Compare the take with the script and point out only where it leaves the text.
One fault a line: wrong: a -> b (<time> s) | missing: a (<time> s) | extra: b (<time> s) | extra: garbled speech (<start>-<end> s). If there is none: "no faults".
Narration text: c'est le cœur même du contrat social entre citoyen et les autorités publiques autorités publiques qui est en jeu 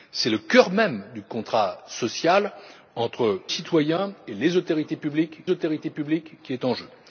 no faults